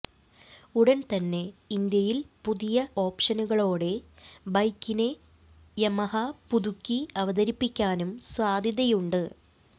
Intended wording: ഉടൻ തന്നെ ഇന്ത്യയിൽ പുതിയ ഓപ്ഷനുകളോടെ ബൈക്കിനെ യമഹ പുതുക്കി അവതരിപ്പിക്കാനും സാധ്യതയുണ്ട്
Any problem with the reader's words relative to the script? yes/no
no